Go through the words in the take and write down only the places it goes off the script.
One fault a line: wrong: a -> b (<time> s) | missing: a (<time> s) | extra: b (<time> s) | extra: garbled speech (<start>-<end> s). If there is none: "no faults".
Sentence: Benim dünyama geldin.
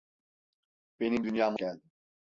no faults